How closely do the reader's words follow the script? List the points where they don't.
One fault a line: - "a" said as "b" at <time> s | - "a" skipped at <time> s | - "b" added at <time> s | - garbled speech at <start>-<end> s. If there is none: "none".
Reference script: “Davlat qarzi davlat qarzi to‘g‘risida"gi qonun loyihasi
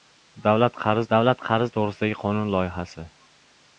none